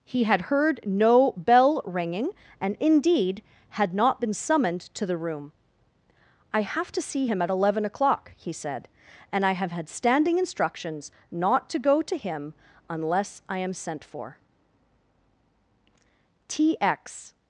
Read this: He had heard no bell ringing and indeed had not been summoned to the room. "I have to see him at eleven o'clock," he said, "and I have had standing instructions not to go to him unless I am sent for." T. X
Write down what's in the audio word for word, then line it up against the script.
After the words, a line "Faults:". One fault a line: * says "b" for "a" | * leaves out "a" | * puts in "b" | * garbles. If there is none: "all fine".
He had heard no bell ringing and indeed had not been summoned to the room. "I have to see him at eleven o'clock," he said, "and I have had standing instructions not to go to him unless I am sent for." T. X
Faults:
all fine